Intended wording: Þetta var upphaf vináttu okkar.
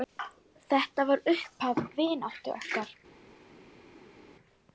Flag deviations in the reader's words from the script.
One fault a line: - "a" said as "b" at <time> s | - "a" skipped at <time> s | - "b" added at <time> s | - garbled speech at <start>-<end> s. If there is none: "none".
none